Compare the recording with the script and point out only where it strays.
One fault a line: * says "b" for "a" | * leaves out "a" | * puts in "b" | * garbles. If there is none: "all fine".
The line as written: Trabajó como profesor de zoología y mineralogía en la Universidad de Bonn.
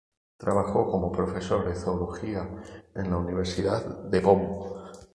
* leaves out "y mineralogía"